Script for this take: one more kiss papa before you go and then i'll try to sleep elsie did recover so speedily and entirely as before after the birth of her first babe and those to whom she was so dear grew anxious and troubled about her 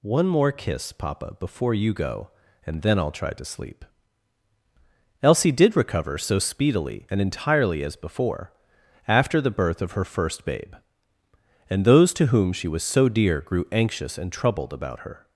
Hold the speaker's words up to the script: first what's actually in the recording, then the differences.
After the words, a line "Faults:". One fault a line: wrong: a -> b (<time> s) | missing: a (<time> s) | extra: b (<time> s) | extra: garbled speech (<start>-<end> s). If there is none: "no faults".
one more kiss papa before you go and then i'll try to sleep elsie did recover so speedily and entirely as before after the birth of her first babe and those to whom she was so dear grew anxious and troubled about her
Faults:
no faults